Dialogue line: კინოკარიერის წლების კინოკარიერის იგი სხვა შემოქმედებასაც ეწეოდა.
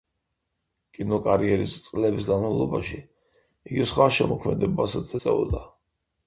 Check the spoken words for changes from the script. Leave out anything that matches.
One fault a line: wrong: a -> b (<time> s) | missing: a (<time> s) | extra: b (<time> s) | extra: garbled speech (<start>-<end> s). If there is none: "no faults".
wrong: კინოკარიერის -> განმავლობაში (2.3 s)